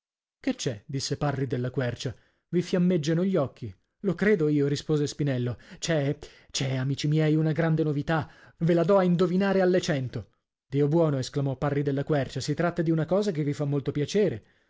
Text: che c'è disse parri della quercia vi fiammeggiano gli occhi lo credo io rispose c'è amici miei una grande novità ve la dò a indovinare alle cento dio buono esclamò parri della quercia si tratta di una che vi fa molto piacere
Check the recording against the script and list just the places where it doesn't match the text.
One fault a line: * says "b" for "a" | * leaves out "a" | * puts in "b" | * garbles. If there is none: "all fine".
* puts in "spinello"
* puts in "c'è"
* puts in "cosa"